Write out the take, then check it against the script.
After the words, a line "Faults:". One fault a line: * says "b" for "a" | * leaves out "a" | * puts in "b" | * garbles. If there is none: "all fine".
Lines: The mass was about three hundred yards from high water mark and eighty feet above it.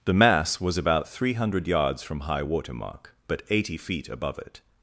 The mass was about three hundred yards from high water mark but eighty feet above it.
Faults:
* says "but" for "and"